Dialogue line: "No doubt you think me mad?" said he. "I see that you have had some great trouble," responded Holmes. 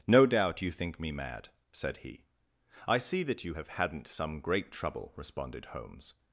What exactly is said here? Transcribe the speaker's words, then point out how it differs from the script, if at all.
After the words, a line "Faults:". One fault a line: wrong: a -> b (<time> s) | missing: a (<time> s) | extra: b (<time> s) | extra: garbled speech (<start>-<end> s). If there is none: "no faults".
"No doubt you think me mad?" said he. "I see that you have hadn't some great trouble," responded Holmes.
Faults:
wrong: had -> hadn't (3.7 s)